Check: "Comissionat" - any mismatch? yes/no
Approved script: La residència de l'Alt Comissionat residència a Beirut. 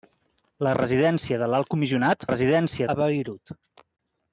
no